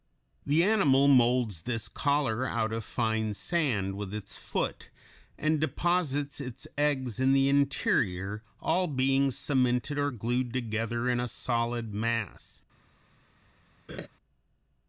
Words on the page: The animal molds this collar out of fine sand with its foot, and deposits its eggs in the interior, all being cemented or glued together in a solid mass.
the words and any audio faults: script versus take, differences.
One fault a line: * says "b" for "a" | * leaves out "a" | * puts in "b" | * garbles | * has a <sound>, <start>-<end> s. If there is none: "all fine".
* has a laugh, 13.9-14.1 s